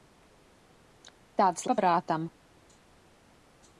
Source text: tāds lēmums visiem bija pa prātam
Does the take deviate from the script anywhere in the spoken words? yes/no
yes